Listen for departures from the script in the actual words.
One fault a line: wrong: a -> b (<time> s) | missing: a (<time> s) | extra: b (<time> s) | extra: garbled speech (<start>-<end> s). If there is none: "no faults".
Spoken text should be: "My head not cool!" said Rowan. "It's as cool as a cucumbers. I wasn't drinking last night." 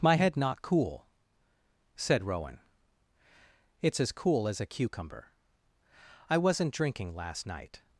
wrong: cucumbers -> cucumber (4.7 s)